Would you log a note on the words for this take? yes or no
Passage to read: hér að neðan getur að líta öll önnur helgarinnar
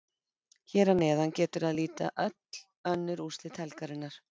yes